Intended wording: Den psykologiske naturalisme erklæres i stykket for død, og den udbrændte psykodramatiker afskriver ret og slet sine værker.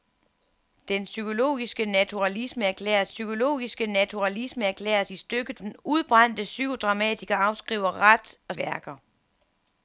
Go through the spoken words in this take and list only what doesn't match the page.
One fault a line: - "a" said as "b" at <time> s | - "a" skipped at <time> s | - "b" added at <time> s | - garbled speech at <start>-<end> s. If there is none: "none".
- "i stykket for død og" said as "psykologiske naturalisme erklæres i stykket" at 3.1 s
- "slet sine" skipped at 8.6 s